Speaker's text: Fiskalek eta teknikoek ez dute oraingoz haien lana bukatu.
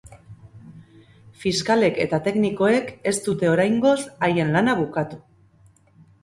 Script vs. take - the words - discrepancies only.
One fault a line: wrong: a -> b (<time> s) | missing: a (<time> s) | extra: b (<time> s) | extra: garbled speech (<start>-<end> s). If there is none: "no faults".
no faults